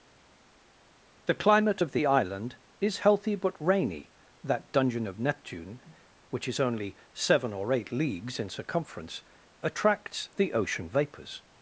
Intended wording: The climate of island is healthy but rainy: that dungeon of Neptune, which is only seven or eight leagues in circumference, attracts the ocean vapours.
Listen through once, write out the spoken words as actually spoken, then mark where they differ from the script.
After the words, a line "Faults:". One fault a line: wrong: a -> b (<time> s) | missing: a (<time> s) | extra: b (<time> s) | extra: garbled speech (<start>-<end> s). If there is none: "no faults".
The climate of the island is healthy but rainy: that dungeon of Neptune, which is only seven or eight leagues in circumference, attracts the ocean vapours.
Faults:
extra: the (1.9 s)